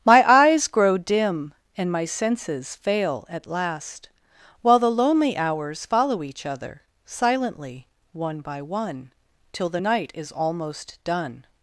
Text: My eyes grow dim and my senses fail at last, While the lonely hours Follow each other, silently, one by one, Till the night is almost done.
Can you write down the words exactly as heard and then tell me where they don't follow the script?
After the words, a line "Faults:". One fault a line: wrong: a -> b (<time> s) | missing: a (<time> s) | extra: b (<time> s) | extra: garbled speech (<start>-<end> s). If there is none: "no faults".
My eyes grow dim and my senses fail at last, While the lonely hours Follow each other, silently, one by one, Till the night is almost done.
Faults:
no faults